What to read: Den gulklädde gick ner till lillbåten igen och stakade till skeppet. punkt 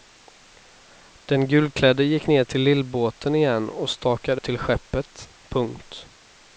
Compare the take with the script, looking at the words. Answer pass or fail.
pass